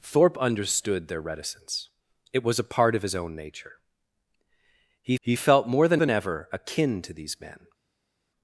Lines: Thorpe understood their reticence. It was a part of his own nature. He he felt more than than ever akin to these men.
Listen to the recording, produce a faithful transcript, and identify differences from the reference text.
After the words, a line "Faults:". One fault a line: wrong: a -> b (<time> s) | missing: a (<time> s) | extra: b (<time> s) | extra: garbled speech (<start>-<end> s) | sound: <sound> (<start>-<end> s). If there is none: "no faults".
Thorpe understood their reticence. It was a part of his own nature. He he felt more than than ever akin to these men.
Faults:
no faults